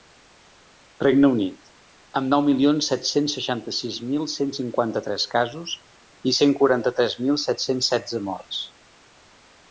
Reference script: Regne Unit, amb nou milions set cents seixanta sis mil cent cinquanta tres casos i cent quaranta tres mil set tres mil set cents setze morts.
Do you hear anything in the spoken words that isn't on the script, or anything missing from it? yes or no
yes